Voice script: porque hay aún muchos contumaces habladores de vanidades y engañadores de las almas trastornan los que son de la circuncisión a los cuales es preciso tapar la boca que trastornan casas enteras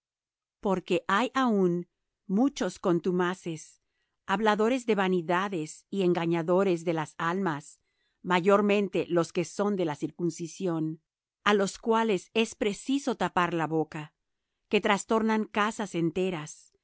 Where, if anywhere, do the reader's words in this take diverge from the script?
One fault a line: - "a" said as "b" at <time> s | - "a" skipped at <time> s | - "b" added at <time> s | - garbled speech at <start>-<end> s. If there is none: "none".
- "trastornan" said as "mayormente" at 8.2 s